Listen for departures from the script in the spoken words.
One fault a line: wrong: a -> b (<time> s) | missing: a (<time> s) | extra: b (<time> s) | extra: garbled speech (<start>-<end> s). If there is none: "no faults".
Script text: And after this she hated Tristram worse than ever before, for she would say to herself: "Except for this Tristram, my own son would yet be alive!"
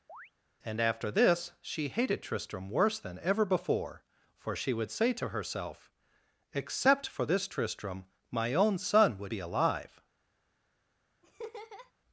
missing: yet (9.3 s)